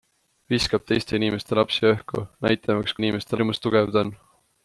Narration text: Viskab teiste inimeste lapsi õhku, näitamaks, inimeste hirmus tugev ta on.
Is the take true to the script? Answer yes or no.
yes